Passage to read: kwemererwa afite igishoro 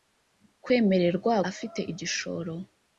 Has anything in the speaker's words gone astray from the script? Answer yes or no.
no